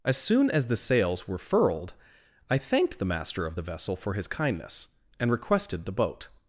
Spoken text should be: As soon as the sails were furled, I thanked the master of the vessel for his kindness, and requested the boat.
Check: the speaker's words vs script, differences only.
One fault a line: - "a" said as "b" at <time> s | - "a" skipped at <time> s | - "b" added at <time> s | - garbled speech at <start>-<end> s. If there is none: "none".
none